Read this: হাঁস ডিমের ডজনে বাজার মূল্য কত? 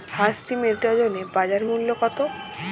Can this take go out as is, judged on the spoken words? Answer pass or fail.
pass